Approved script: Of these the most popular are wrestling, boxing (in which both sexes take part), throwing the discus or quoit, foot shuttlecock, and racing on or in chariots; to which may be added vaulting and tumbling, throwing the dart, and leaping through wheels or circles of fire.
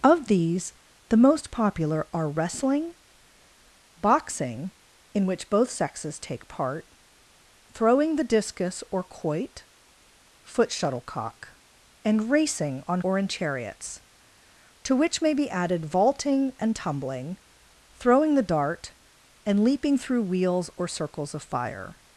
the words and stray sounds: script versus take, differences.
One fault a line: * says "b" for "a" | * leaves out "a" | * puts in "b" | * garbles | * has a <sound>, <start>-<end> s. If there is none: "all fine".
all fine